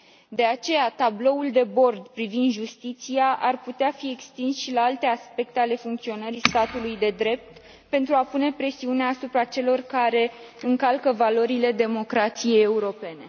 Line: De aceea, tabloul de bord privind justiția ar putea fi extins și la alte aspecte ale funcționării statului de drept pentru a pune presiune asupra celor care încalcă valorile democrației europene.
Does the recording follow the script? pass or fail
pass